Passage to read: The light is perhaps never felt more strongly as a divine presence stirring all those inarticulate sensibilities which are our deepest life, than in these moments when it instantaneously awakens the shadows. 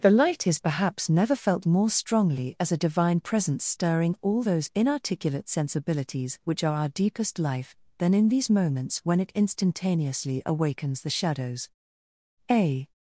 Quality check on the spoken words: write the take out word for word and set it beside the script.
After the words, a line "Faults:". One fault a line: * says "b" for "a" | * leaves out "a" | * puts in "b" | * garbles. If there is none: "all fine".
The light is perhaps never felt more strongly as a divine presence stirring all those inarticulate sensibilities which are our deepest life, than in these moments when it instantaneously awakens the shadows. A
Faults:
* puts in "A"